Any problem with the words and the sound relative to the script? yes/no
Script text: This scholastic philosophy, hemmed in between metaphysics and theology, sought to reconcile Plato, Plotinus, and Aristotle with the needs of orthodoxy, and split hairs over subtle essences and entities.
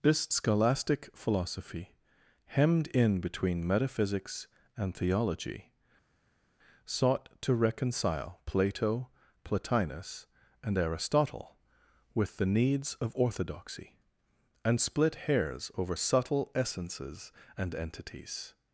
no